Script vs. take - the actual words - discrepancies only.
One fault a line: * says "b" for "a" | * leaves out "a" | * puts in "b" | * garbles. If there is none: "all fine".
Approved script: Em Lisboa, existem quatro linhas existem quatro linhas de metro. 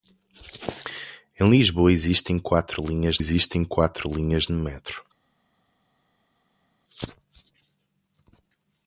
all fine